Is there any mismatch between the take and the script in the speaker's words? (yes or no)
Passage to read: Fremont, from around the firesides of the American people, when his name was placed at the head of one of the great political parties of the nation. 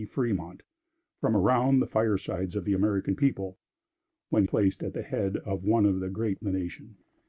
yes